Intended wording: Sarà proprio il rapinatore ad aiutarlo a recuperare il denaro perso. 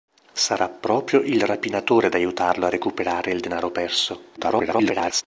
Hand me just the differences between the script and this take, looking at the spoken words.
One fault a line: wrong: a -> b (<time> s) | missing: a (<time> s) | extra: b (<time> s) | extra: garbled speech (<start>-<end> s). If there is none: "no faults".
extra: garbled speech (4.4-5.2 s)